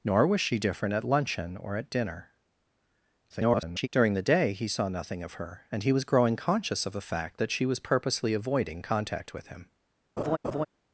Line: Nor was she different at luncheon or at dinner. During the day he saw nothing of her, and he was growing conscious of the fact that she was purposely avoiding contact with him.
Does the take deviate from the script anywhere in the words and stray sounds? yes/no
yes